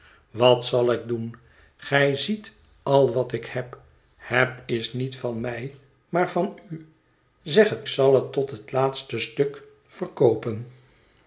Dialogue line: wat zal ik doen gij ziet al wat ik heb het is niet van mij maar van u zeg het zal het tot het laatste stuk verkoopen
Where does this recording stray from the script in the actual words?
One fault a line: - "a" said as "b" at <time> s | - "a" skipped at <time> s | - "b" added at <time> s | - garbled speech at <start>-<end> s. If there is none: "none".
none